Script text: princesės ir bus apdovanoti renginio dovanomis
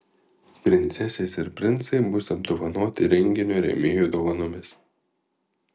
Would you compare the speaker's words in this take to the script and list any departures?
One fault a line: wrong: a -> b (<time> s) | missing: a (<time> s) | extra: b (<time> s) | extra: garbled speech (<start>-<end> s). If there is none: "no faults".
extra: princai (1.6 s)
extra: rėmėjų (3.7 s)